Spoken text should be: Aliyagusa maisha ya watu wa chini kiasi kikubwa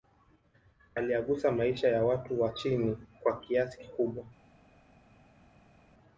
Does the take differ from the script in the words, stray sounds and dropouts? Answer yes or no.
yes